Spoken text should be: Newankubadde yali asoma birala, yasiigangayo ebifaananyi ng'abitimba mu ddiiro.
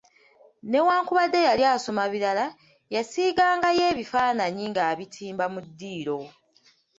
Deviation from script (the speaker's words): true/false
false